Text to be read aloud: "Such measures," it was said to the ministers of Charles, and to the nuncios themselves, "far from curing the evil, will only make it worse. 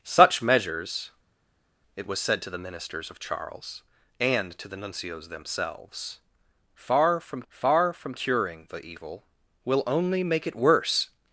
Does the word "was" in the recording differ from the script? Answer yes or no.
no